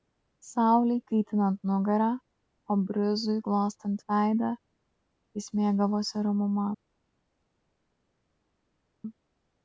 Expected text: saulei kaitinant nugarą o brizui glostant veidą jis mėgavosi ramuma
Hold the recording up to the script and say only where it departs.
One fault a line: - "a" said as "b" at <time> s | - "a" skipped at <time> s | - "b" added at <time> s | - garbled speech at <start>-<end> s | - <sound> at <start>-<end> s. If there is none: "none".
none